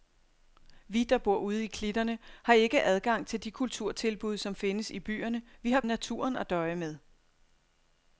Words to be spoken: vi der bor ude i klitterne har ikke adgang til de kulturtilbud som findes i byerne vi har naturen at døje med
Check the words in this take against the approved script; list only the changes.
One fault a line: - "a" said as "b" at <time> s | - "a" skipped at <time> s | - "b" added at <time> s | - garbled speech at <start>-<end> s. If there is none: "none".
none